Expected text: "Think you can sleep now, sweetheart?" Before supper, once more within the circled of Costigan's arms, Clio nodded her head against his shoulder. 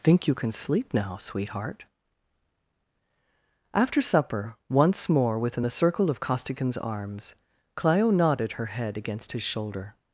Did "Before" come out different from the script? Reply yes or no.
yes